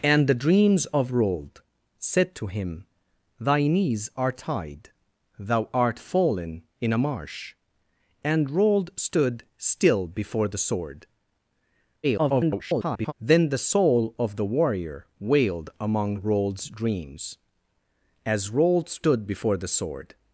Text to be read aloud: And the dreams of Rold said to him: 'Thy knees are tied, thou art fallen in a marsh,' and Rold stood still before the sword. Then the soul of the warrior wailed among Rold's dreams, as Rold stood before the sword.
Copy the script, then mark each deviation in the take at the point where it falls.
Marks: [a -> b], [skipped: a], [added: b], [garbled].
And the dreams of Rold said to him: 'Thy knees are tied, thou art fallen in a marsh,' and Rold stood still before the sword. [garbled] Then the soul of the warrior wailed among Rold's dreams, as Rold stood before the sword.